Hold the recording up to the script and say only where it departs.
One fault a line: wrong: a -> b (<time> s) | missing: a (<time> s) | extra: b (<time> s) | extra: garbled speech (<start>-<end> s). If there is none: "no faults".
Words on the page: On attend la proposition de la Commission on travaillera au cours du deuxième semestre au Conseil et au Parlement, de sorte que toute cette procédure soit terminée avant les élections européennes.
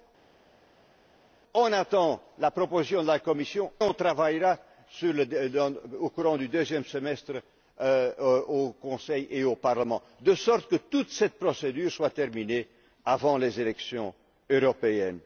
no faults